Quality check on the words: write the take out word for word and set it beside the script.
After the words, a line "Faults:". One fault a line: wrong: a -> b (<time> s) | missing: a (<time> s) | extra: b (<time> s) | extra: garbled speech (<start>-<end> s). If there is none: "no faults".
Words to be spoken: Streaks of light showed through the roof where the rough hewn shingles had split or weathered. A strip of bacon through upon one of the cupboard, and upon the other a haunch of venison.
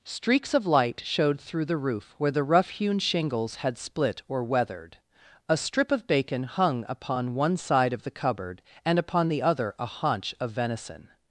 Streaks of light showed through the roof where the rough hewn shingles had split or weathered. A strip of bacon hung upon one side of the cupboard, and upon the other a haunch of venison.
Faults:
wrong: through -> hung (6.4 s)
extra: side (7.5 s)